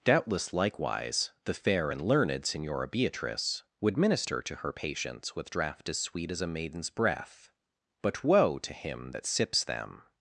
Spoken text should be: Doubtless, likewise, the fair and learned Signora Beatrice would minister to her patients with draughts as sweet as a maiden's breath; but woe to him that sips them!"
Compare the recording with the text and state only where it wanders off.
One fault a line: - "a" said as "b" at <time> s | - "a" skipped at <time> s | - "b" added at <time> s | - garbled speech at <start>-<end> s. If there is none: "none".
- "draughts" said as "draught" at 5.5 s